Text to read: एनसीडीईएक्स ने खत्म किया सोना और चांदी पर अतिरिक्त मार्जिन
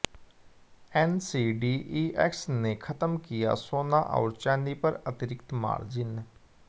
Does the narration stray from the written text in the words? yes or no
no